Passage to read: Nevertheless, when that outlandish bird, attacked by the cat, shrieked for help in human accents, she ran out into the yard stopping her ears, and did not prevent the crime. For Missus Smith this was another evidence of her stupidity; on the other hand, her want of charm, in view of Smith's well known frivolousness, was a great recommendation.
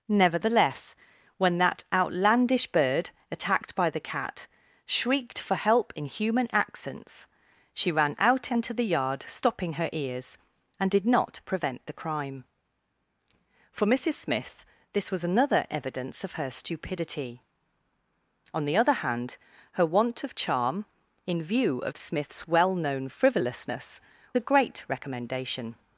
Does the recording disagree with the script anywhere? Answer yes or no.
yes